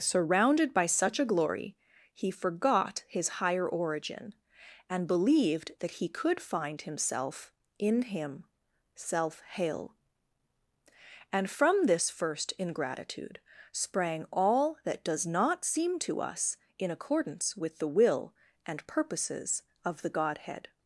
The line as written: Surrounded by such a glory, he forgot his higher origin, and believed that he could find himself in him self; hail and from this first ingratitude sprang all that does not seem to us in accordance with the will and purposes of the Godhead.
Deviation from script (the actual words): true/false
false